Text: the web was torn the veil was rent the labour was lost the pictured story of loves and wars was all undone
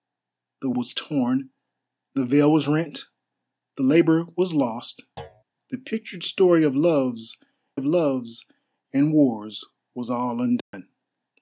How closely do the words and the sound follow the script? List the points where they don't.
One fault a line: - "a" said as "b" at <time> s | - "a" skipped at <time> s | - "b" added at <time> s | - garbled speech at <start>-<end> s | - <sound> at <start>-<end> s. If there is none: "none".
- "web" skipped at 0.7 s
- thud at 5.2-5.4 s
- "of loves" added at 7.7 s
- dropout at 10.6-10.7 s